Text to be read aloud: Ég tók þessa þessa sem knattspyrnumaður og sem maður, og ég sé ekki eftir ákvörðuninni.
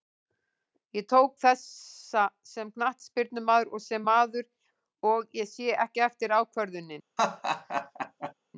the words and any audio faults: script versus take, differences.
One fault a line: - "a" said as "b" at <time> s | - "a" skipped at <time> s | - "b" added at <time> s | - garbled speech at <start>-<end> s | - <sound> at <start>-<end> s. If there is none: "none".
- "þessa" skipped at 2.2 s
- laugh at 7.2-8.3 s